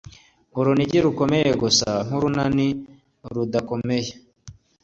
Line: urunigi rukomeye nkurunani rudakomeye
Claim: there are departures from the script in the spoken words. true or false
true